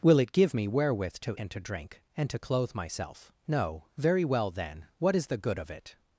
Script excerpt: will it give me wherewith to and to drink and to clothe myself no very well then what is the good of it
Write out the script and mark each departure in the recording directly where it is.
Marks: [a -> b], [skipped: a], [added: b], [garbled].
will it give me wherewith to and to drink and to clothe myself no very well then what is the good of it